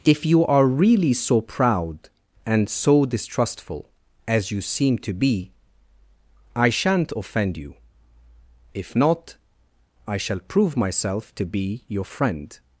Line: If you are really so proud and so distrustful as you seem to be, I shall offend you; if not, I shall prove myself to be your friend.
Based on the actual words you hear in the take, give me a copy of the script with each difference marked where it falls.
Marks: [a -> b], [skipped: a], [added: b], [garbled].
If you are really so proud and so distrustful as you seem to be, I [shall -> shan't] offend you; if not, I shall prove myself to be your friend.